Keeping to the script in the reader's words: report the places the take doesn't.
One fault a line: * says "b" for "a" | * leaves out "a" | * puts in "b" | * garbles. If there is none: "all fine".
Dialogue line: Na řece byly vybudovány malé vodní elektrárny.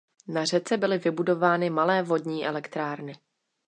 all fine